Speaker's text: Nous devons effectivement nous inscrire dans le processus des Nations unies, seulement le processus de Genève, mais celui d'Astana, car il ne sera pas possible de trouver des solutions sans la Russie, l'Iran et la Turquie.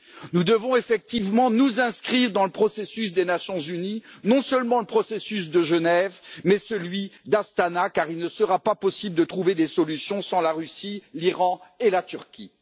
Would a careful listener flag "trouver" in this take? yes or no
no